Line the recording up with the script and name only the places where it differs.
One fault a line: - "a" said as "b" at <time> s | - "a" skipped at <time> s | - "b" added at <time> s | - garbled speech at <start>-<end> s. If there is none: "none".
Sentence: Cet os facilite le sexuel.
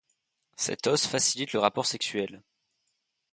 - "rapport" added at 1.6 s